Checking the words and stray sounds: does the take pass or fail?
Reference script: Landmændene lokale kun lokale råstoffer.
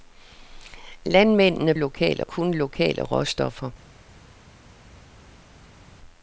pass